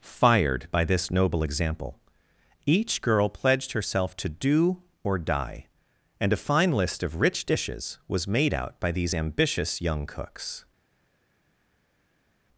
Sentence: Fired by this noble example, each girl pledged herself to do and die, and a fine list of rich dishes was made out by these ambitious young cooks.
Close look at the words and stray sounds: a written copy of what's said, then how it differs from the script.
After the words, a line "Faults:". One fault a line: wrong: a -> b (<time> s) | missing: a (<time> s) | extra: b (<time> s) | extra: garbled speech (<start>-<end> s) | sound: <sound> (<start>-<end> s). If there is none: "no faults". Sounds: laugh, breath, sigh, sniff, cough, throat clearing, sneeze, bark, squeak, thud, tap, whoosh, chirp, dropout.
Fired by this noble example, each girl pledged herself to do or die, and a fine list of rich dishes was made out by these ambitious young cooks.
Faults:
wrong: and -> or (5.0 s)